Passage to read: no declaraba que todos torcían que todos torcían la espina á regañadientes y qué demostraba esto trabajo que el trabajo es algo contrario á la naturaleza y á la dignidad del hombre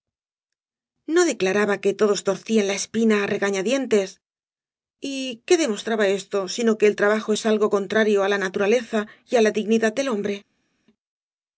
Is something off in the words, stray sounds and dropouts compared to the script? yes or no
yes